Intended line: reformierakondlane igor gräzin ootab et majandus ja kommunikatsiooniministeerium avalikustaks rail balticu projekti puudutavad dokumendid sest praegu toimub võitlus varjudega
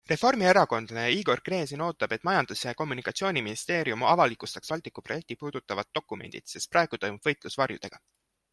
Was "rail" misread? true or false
true